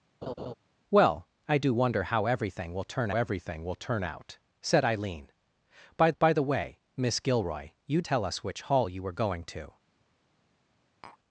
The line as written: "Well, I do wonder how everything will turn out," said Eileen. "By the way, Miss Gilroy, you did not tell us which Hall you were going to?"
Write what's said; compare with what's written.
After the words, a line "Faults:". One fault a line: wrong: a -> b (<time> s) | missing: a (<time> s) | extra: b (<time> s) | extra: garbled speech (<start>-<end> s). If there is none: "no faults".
"Well, I do wonder how everything will turn everything will turn out," said Eileen. "By by the way, Miss Gilroy, you tell us which Hall you were going to?"
Faults:
extra: everything will turn (3.1 s)
extra: by (6.2 s)
missing: did not (8.0 s)